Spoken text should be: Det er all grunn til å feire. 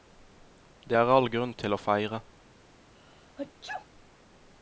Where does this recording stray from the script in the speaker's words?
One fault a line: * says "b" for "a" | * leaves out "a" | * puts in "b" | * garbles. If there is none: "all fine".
all fine